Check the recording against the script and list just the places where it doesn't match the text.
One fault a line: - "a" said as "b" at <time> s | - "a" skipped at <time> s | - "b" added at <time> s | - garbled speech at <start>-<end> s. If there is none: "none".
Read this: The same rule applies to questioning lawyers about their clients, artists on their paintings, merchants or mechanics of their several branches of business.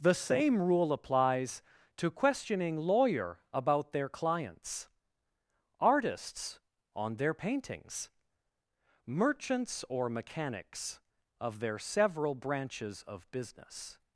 - "lawyers" said as "lawyer" at 2.8 s